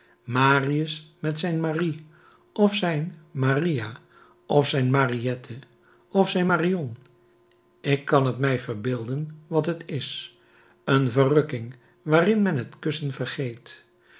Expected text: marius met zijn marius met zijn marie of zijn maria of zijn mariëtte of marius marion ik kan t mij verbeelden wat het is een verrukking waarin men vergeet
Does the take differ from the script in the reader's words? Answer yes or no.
yes